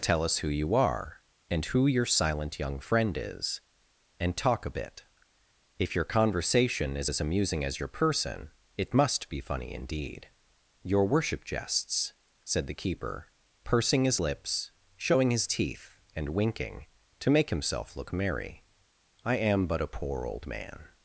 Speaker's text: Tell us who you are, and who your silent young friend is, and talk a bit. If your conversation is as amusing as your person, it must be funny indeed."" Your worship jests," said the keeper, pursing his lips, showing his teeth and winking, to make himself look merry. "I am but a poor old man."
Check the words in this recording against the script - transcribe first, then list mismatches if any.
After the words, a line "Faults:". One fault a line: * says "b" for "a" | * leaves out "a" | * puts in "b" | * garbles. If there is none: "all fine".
Tell us who you are, and who your silent young friend is, and talk a bit. If your conversation is as amusing as your person, it must be funny indeed."" Your worship jests," said the keeper, pursing his lips, showing his teeth and winking, to make himself look merry. "I am but a poor old man."
Faults:
all fine